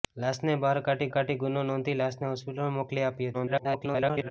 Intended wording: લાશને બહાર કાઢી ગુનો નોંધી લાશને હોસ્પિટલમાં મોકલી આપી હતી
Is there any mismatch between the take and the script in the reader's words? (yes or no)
yes